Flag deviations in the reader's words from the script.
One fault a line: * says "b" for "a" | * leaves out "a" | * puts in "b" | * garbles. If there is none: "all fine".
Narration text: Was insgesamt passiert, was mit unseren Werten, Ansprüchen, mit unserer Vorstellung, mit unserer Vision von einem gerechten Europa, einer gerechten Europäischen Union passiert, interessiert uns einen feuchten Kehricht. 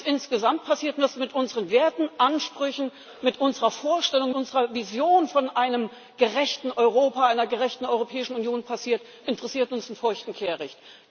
* leaves out "mit"